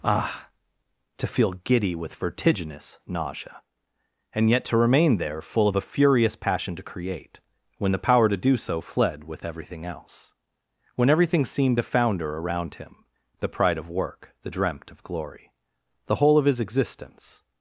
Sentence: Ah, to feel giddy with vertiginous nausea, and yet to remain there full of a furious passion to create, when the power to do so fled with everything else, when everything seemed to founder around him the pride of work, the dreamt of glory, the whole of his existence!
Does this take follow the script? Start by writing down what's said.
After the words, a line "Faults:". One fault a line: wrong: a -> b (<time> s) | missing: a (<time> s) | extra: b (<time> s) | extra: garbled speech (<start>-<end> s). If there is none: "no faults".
Ah, to feel giddy with vertiginous nausea, and yet to remain there full of a furious passion to create, when the power to do so fled with everything else, when everything seemed to founder around him the pride of work, the dreamt of glory, the whole of his existence!
Faults:
no faults